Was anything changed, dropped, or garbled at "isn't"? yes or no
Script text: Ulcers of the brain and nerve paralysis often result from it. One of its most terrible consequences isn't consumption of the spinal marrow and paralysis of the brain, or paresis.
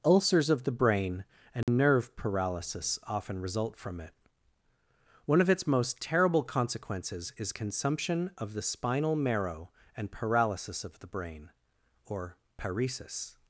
yes